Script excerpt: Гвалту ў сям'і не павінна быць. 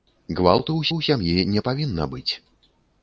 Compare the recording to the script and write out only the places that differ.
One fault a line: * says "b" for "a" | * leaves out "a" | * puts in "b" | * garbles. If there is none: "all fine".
* puts in "ў"